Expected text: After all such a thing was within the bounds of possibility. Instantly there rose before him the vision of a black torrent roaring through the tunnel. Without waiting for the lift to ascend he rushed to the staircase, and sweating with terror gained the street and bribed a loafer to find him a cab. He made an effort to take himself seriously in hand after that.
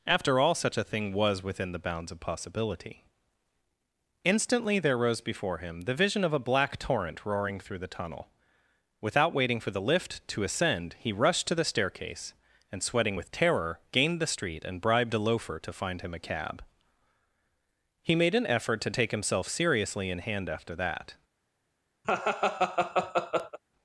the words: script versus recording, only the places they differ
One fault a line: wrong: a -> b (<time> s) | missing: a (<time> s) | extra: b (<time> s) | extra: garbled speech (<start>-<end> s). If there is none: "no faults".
no faults